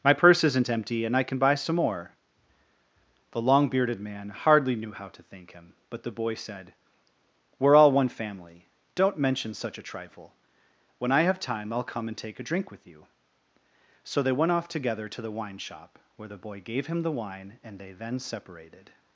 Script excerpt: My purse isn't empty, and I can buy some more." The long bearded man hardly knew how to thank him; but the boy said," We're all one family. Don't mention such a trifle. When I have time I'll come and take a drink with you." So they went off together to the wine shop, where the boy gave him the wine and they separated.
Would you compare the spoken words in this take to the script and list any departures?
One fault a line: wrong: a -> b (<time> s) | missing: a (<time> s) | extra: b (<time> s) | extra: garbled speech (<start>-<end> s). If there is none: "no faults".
extra: then (17.9 s)